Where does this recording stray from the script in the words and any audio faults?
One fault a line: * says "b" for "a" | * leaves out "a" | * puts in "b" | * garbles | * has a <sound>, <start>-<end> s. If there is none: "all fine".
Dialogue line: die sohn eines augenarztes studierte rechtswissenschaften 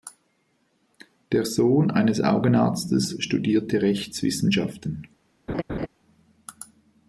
* says "der" for "die"
* has a laugh, 5.5-5.9 s